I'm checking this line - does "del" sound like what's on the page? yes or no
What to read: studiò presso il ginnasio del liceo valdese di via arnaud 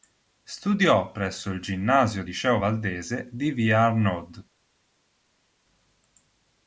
no